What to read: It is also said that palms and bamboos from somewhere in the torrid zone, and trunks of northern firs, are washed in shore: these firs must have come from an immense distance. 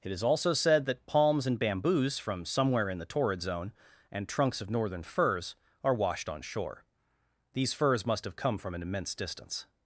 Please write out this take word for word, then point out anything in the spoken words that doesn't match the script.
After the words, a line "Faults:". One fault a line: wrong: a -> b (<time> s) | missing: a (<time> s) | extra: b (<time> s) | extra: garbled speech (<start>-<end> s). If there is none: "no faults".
It is also said that palms and bamboos from somewhere in the torrid zone, and trunks of northern firs, are washed on shore: these firs must have come from an immense distance.
Faults:
wrong: in -> on (6.3 s)